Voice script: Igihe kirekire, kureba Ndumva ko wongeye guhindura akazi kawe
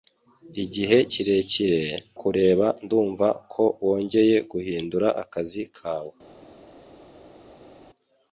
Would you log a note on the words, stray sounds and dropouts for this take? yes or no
no